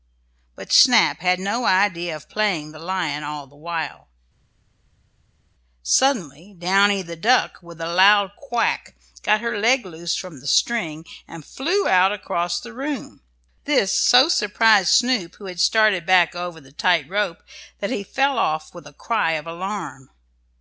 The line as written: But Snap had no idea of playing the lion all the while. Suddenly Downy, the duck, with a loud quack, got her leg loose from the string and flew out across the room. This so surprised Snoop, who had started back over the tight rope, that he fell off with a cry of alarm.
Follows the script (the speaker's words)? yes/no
yes